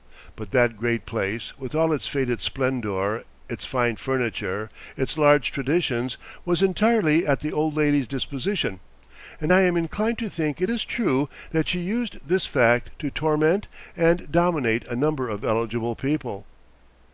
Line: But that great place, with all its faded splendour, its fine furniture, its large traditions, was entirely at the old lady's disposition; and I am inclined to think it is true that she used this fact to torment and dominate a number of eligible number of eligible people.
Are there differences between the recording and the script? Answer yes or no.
yes